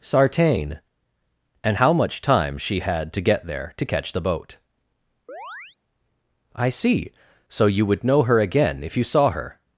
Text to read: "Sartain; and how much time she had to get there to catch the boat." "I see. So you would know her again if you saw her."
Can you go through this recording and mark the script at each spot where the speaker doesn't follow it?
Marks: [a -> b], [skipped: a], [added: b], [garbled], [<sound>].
"Sartain; and how much time she had to get there to catch the boat." [chirp] "I see. So you would know her again if you saw her."